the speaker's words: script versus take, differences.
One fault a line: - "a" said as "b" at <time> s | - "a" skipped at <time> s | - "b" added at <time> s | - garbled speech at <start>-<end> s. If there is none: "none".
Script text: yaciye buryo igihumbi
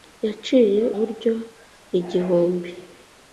none